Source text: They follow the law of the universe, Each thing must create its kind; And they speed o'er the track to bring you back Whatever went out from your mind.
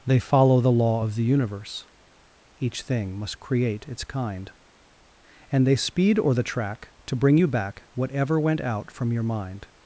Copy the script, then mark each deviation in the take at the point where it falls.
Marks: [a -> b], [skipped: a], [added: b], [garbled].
They follow the law of the universe, Each thing must create its kind; And they speed o'er the track to bring you back Whatever went out from your mind.